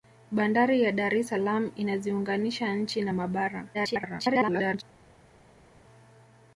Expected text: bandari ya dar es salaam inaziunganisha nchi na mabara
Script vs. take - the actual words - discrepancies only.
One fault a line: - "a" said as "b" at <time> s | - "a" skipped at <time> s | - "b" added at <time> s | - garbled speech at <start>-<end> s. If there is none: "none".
- garbled speech at 3.7-4.8 s